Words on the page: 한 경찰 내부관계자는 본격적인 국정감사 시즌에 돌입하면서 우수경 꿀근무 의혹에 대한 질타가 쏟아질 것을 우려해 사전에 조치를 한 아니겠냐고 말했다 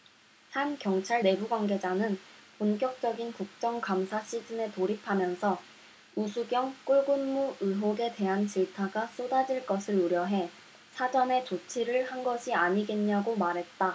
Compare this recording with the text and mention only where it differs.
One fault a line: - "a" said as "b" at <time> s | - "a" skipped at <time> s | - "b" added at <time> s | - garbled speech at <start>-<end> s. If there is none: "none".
- "것이" added at 12.2 s